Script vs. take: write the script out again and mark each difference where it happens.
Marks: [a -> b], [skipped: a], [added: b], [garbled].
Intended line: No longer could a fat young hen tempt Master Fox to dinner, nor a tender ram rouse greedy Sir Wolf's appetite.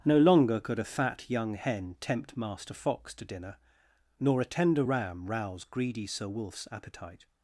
No longer could a fat young hen tempt Master Fox to dinner, nor a tender ram rouse greedy Sir Wolf's appetite.